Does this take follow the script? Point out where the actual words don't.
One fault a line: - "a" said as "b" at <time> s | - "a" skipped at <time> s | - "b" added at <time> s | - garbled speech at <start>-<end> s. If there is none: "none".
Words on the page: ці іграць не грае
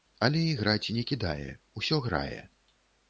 - "ці" said as "але" at 0.3 s
- "кідае усё" added at 1.1 s